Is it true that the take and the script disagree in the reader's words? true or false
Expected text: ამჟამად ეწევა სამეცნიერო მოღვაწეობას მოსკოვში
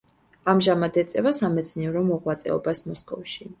false